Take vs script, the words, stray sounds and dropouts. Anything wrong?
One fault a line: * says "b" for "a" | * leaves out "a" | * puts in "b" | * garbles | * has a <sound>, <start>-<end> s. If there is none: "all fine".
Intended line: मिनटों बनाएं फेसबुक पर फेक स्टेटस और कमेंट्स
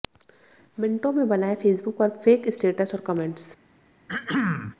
* puts in "में"
* has a throat clearing, 4.1-4.8 s